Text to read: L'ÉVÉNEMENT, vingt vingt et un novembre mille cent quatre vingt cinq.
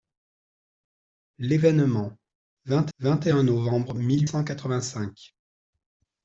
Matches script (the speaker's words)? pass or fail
pass